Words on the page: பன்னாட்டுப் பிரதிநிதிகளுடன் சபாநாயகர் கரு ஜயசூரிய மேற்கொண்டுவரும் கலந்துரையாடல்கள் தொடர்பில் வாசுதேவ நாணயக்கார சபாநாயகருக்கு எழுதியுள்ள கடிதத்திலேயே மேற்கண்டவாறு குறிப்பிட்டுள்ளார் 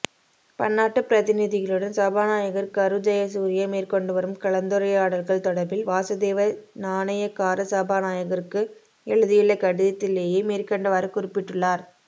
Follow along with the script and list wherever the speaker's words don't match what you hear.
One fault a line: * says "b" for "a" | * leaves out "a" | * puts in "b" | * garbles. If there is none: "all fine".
all fine